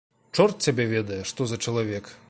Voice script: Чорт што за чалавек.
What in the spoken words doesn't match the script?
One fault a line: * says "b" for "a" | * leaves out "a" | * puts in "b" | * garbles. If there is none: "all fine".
* puts in "цябе ведае"